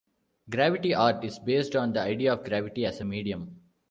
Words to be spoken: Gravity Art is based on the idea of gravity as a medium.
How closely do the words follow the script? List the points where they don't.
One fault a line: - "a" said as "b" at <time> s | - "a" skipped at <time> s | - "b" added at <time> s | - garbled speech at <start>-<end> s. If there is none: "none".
none